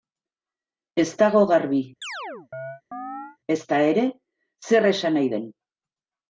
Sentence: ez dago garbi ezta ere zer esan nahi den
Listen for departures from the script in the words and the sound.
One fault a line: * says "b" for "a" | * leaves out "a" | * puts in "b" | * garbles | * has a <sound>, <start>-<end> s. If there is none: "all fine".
* has a chirp, 2.0-3.4 s